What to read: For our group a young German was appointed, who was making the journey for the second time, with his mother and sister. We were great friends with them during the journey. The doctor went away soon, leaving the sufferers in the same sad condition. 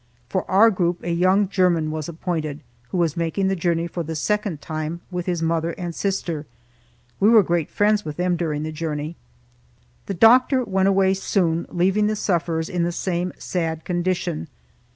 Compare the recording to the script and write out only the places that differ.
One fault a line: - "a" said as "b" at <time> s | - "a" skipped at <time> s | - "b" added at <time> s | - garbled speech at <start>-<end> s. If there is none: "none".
none